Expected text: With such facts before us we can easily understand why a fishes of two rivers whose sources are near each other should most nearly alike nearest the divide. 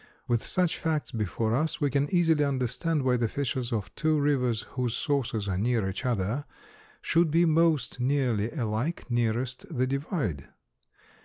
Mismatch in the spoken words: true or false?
true